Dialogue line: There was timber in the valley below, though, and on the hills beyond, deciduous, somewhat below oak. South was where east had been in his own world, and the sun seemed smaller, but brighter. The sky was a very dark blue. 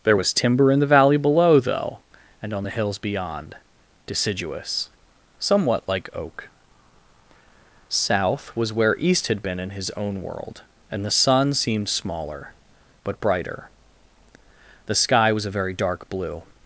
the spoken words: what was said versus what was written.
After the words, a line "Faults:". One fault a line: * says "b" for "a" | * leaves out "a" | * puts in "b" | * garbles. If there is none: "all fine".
There was timber in the valley below, though, and on the hills beyond, deciduous, somewhat like oak. South was where east had been in his own world, and the sun seemed smaller, but brighter. The sky was a very dark blue.
Faults:
* says "like" for "below"